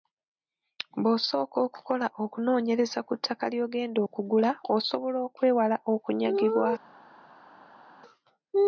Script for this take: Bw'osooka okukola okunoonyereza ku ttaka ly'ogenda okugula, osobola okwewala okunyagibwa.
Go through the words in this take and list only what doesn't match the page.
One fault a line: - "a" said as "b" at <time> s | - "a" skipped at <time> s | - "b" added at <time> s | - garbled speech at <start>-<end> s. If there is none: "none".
none